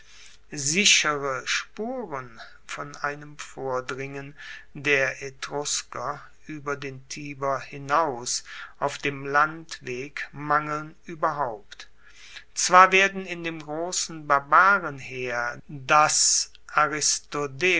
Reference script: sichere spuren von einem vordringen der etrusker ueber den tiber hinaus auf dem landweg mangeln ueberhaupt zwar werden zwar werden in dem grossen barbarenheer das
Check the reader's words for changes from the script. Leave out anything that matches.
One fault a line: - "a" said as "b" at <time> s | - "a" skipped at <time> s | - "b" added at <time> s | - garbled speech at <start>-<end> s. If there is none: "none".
- "zwar werden" skipped at 13.2 s